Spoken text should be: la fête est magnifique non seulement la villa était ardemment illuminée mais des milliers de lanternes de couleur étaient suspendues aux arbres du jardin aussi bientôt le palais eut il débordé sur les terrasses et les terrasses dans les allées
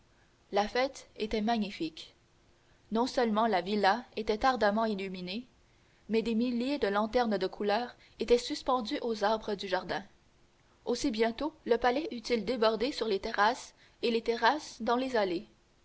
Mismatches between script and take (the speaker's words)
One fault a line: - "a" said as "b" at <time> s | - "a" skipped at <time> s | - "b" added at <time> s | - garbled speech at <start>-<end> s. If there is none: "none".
- "est" said as "était" at 1.2 s